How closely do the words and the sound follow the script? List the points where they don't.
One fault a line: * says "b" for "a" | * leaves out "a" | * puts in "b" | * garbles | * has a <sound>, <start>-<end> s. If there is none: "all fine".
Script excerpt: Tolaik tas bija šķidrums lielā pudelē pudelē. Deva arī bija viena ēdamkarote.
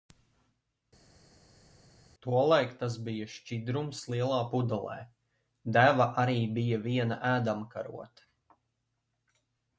* leaves out "pudelē"